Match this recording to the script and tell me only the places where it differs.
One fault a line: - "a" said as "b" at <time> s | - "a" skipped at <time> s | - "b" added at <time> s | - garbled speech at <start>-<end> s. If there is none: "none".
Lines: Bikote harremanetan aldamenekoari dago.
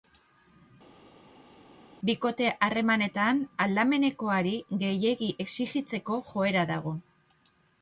- "gehiegi exijitzeko joera" added at 4.8 s